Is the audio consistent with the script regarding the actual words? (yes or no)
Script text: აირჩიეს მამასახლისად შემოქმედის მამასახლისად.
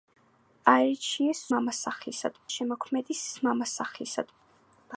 yes